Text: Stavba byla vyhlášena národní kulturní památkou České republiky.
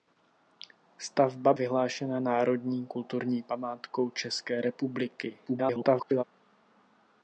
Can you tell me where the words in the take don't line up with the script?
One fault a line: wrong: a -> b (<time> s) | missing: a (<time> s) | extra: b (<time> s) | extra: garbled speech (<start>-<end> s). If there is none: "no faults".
missing: byla (1.5 s)
extra: garbled speech (5.5-6.2 s)